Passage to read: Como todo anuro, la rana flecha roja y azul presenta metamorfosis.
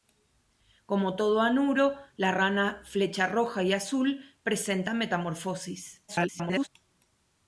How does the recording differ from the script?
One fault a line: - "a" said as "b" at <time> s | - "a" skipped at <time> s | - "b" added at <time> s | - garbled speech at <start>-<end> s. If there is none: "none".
- garbled speech at 6.1-6.7 s